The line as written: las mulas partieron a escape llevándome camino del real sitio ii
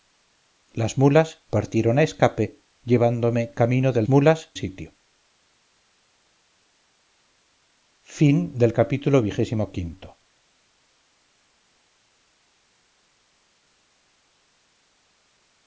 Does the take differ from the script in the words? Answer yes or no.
yes